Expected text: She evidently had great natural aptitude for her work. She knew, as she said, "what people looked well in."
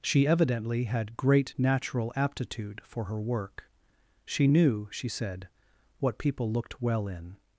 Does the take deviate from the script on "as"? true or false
true